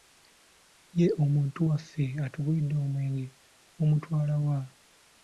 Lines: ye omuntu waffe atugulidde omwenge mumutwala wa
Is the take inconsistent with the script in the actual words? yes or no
no